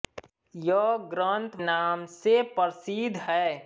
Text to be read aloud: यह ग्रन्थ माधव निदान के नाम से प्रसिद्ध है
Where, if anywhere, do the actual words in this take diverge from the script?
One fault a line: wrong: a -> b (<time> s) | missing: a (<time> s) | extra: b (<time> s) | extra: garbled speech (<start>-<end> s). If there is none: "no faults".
missing: माधव निदान के (1.6 s)